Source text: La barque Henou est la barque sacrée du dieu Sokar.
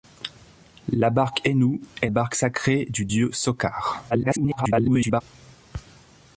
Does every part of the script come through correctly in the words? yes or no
no